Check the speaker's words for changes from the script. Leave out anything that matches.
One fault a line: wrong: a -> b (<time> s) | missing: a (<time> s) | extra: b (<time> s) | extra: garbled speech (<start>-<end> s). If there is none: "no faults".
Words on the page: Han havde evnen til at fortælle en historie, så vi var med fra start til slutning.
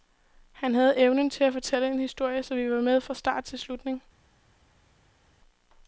no faults